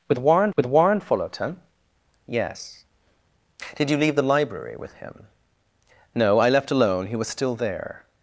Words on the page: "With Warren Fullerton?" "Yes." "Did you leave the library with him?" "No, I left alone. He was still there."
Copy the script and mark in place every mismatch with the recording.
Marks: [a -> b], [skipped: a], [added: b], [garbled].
"With Warren [added: with Warren] Fullerton?" "Yes." "Did you leave the library with him?" "No, I left alone. He was still there."